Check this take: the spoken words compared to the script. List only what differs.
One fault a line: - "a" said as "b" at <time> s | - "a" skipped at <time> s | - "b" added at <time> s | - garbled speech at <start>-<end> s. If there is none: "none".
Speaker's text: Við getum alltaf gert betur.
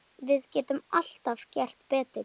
none